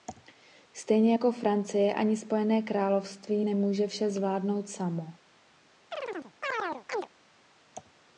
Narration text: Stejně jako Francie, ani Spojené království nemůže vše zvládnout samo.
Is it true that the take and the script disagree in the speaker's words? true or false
false